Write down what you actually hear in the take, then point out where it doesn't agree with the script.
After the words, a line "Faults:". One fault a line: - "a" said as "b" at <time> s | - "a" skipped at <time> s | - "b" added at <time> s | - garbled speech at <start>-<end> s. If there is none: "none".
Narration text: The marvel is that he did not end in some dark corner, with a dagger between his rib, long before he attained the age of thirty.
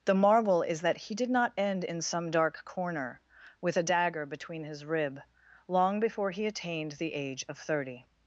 The marvel is that he did not end in some dark corner, with a dagger between his rib, long before he attained the age of thirty.
Faults:
none